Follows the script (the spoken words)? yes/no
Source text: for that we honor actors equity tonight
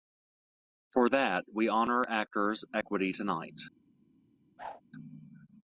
yes